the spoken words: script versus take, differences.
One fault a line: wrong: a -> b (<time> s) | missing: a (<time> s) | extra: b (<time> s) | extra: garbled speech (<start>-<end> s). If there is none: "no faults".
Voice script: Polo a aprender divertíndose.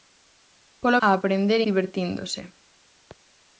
no faults